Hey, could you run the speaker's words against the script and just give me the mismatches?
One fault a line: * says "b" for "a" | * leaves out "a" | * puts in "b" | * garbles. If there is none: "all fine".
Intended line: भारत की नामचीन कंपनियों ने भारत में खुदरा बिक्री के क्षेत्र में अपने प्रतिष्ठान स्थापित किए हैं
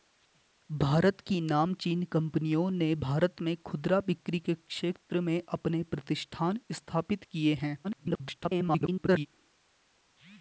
* garbles